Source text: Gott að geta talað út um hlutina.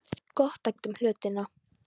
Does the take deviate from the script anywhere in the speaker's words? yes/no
yes